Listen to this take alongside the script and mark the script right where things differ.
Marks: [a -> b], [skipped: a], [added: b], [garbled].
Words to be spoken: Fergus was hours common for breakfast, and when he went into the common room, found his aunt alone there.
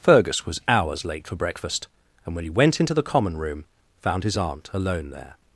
Fergus was hours [common -> late] for breakfast, and when he went into the common room, found his aunt alone there.